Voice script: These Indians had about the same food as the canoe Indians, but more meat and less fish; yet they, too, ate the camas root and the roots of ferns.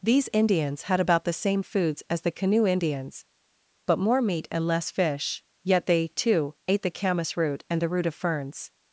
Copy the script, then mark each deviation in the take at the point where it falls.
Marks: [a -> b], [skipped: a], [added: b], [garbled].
These Indians had about the same [food -> foods] as the canoe Indians, but more meat and less fish; yet they, too, ate the camas root and the [roots -> root] of ferns.